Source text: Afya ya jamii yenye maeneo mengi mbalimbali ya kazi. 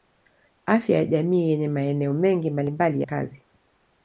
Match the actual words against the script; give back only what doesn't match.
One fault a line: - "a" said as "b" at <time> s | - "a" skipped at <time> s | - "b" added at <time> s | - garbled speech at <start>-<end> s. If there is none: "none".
- "ya" skipped at 3.0 s